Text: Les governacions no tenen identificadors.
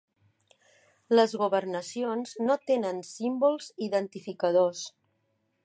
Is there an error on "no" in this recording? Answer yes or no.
no